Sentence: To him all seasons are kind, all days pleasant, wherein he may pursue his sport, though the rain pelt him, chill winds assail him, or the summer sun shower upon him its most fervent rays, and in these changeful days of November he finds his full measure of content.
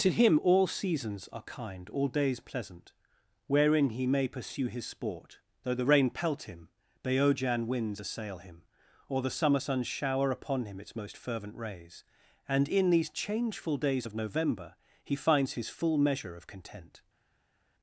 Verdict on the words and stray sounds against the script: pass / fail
fail